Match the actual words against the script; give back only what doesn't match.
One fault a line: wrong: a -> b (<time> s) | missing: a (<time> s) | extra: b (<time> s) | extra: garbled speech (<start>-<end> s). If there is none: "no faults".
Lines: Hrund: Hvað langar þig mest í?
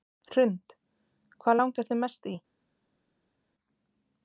no faults